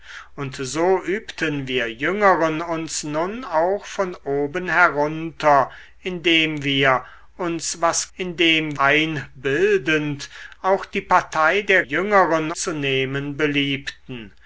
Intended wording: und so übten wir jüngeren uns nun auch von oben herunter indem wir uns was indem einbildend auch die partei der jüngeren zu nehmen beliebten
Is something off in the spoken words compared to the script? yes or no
no